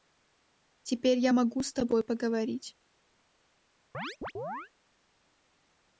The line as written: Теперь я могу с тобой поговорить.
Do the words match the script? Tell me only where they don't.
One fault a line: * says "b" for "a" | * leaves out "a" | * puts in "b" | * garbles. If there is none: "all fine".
all fine